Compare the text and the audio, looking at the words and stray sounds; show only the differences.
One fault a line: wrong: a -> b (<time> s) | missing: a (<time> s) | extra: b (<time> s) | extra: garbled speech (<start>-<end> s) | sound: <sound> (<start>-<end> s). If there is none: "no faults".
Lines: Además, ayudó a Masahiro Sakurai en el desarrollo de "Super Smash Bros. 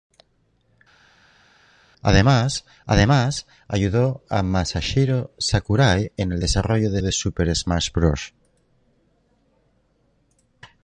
extra: además (2.9 s)
extra: de (7.0 s)